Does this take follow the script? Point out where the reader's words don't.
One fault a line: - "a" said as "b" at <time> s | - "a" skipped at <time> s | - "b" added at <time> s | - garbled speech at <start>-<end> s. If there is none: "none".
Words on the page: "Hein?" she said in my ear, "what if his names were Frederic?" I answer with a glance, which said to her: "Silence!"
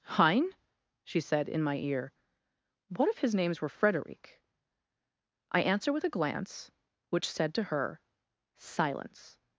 none